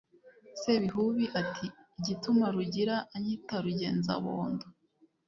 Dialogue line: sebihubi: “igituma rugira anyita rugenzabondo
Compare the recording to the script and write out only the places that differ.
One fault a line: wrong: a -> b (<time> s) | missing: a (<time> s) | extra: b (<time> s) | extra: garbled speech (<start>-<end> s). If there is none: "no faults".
extra: ati (1.4 s)